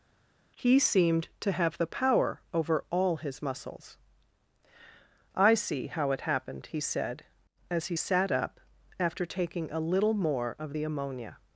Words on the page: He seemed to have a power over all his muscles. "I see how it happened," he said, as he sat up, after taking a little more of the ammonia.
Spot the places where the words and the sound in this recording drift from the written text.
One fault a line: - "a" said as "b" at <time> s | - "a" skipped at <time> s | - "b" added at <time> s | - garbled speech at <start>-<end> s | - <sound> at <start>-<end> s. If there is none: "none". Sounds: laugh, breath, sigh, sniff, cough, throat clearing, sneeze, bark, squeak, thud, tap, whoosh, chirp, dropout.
- "a" said as "the" at 1.8 s